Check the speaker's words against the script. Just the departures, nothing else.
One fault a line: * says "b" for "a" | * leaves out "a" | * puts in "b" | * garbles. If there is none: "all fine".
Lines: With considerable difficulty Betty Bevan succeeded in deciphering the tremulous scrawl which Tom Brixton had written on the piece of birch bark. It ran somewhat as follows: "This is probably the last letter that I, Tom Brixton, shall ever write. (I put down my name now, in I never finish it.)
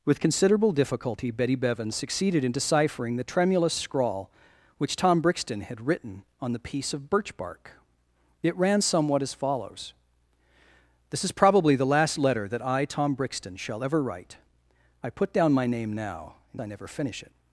all fine